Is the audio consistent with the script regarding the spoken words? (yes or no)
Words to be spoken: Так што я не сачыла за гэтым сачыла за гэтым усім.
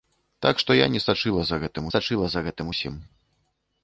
yes